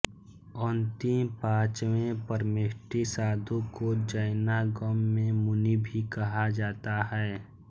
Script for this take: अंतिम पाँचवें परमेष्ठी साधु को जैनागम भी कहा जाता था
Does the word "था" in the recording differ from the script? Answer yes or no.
yes